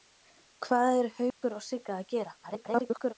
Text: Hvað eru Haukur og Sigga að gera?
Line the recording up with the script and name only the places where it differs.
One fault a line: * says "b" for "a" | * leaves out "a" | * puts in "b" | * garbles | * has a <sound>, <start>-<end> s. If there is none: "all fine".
* has a dropout, 1.3-1.4 s
* garbles